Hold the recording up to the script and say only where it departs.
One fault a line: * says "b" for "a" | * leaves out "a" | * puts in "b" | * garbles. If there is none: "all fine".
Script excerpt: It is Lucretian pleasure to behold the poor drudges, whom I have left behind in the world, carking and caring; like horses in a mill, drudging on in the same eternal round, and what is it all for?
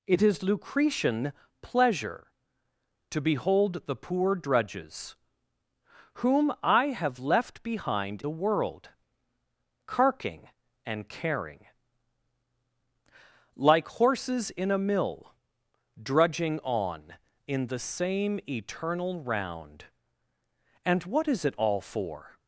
* leaves out "in"